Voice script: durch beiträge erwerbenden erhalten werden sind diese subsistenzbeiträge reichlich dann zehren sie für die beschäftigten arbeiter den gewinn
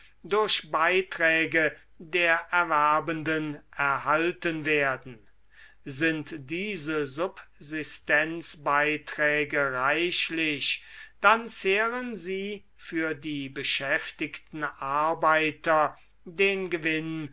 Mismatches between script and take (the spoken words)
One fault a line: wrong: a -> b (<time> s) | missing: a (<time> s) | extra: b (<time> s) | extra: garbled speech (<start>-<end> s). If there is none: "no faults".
extra: der (2.0 s)